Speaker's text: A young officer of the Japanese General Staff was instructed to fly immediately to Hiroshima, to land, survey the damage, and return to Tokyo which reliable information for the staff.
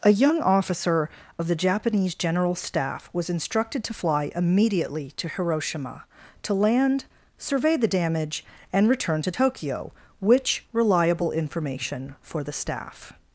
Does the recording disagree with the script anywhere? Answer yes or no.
no